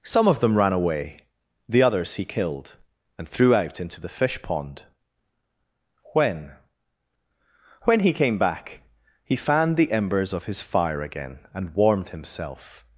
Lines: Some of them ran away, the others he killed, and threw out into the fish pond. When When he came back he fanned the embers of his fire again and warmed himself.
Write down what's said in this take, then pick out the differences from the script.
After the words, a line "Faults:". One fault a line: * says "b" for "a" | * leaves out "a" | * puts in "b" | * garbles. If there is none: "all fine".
Some of them ran away, the others he killed, and threw out into the fish pond. When When he came back he fanned the embers of his fire again and warmed himself.
Faults:
all fine